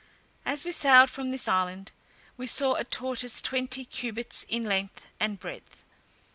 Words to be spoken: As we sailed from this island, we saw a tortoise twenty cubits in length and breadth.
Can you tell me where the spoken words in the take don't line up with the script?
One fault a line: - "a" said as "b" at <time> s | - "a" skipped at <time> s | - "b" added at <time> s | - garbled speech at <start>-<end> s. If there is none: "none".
none